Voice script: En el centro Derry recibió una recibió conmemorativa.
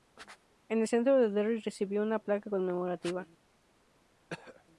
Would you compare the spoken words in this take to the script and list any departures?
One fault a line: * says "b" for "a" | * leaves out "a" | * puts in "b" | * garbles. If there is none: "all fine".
* puts in "de"
* says "placa" for "recibió"